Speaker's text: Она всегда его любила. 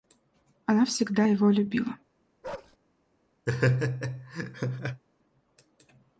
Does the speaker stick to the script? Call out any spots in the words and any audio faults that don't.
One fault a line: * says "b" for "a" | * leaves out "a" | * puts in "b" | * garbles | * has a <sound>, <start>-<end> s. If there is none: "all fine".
* has a bark, 2.4-2.8 s
* has a laugh, 3.5-5.0 s